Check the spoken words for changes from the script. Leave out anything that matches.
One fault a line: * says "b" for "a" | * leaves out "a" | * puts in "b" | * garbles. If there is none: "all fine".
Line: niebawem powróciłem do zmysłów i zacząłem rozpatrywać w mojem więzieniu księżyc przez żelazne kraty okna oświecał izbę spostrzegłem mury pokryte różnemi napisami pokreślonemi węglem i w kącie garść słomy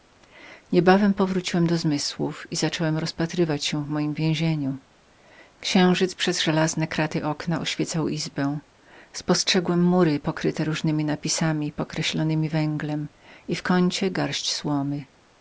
* puts in "się"